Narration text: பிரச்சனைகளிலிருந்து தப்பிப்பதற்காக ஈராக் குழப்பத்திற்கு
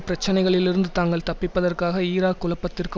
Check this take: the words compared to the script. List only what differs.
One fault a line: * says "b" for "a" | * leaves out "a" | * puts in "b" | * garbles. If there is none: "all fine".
* puts in "தாங்கள்"